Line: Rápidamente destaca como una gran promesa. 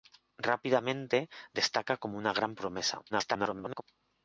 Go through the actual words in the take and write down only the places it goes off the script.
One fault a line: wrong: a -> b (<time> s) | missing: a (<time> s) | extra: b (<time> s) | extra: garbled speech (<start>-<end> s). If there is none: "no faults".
extra: garbled speech (3.1-3.8 s)